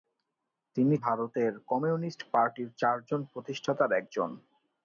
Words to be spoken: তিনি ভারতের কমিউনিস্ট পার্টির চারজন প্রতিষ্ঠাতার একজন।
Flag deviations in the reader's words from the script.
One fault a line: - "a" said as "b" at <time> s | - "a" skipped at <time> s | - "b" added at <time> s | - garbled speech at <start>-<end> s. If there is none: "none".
none